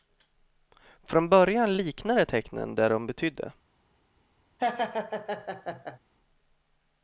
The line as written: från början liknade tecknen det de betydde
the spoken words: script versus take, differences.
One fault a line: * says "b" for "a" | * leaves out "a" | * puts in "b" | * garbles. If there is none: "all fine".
all fine